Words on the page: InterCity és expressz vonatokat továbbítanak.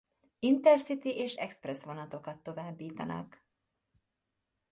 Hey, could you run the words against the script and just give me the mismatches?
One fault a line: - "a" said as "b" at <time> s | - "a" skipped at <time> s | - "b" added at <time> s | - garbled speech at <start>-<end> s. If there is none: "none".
none